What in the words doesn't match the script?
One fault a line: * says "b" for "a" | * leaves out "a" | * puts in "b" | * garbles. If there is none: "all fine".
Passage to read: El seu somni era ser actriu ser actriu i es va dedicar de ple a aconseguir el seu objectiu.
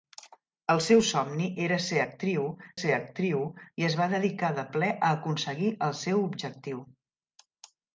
all fine